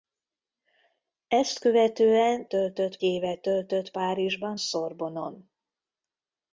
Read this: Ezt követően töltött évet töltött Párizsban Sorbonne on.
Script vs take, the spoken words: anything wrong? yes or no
no